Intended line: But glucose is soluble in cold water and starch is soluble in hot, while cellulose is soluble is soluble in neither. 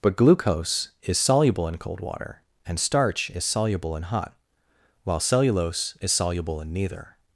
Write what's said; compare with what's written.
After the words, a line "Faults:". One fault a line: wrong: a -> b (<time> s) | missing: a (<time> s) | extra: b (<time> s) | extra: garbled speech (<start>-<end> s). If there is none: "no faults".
But glucose is soluble in cold water and starch is soluble in hot, while cellulose is soluble in neither.
Faults:
missing: is soluble (6.6 s)